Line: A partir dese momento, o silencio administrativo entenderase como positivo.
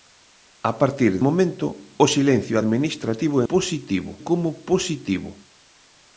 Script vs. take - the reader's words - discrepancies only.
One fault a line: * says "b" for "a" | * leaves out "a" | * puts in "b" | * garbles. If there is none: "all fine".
* leaves out "dese"
* says "positivo" for "entenderase"